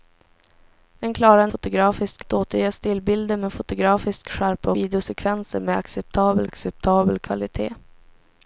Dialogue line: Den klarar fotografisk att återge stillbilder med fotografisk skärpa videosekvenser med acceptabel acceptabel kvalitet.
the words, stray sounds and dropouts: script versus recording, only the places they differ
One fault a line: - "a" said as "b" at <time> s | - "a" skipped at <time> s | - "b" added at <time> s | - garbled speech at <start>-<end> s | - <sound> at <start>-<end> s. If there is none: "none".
none